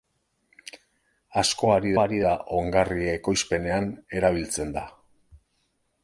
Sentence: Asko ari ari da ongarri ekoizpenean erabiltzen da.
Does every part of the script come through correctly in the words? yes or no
yes